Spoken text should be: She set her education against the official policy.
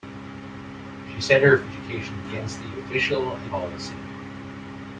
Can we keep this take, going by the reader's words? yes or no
yes